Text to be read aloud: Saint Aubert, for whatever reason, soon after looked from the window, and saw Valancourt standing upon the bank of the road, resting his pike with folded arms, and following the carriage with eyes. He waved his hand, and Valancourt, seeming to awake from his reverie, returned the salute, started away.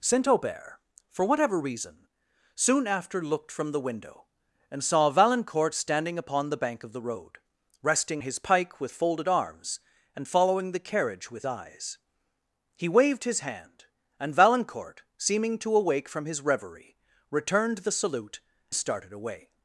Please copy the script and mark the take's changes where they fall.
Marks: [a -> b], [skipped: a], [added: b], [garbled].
Saint Aubert, for whatever reason, soon after looked from the window, and saw Valancourt standing upon the bank of the road, resting his pike with folded arms, and following the carriage with eyes. He waved his hand, and Valancourt, seeming to awake from his reverie, returned the salute, started away.